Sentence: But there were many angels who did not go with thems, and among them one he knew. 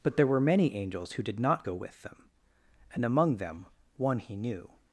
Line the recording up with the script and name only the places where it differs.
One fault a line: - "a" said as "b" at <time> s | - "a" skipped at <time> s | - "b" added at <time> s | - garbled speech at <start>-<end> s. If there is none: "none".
- "thems" said as "them" at 2.0 s